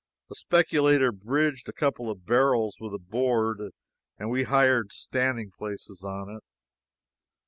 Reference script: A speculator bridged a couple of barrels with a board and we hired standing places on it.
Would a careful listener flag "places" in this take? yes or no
no